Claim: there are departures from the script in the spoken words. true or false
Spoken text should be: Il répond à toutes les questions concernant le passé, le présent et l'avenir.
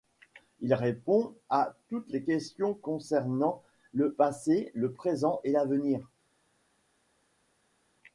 false